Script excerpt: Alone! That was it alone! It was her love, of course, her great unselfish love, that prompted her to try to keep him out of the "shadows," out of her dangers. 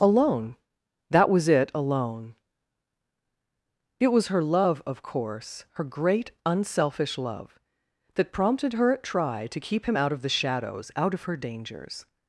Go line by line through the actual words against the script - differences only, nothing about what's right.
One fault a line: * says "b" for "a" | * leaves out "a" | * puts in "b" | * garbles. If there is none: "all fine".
* says "at" for "to"